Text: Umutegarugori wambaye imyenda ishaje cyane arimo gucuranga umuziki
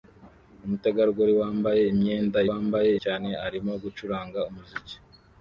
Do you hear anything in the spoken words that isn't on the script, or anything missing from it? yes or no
yes